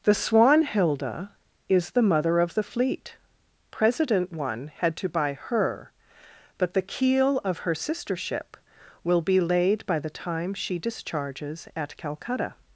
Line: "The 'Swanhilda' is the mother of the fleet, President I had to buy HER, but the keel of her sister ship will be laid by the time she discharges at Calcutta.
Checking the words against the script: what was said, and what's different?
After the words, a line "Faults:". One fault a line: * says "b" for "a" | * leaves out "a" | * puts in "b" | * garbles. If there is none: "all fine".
"The 'Swanhilda' is the mother of the fleet, President one had to buy HER, but the keel of her sister ship will be laid by the time she discharges at Calcutta.
Faults:
* says "one" for "I"